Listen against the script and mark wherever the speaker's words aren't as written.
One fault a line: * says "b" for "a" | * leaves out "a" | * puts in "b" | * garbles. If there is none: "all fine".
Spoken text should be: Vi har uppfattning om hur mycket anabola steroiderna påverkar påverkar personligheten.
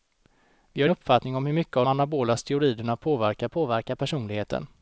all fine